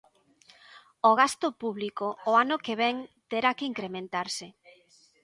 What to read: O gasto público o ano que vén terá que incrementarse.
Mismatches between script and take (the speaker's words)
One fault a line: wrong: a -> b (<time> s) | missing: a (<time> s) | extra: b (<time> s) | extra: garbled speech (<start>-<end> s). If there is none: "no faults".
no faults